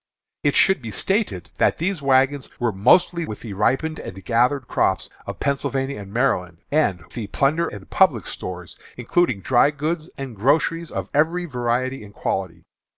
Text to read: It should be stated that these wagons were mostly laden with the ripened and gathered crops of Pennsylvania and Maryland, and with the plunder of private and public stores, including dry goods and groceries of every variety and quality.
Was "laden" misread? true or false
true